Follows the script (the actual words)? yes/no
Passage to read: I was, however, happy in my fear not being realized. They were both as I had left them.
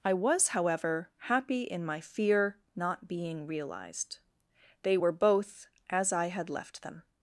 yes